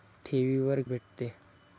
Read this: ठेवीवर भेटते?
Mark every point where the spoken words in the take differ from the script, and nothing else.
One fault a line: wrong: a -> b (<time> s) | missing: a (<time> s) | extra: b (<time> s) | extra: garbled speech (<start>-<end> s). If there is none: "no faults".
no faults